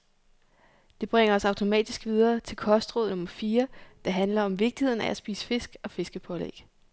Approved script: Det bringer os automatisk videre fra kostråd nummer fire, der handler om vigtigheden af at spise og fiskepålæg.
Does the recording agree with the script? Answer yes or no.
no